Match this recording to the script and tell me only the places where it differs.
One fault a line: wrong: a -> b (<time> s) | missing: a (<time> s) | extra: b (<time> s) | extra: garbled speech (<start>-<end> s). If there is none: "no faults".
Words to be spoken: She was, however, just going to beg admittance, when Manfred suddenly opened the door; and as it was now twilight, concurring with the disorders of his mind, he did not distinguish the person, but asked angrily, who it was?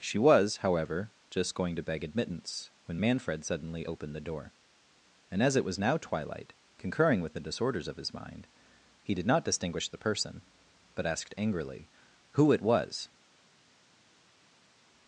no faults